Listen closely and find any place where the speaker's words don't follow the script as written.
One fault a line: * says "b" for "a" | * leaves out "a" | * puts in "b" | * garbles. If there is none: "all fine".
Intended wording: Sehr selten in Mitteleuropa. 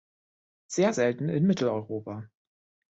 all fine